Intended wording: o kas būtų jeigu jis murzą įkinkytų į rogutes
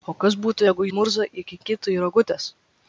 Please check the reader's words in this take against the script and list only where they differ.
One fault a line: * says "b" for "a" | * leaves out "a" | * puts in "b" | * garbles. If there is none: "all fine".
* leaves out "jis"